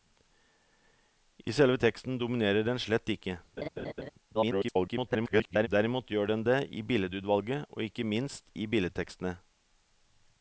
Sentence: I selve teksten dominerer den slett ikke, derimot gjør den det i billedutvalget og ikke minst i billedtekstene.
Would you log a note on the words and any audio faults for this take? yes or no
yes